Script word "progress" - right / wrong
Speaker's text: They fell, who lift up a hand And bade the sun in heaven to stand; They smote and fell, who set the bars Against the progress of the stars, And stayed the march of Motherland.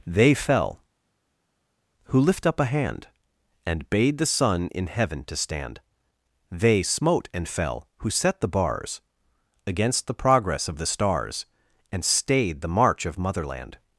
right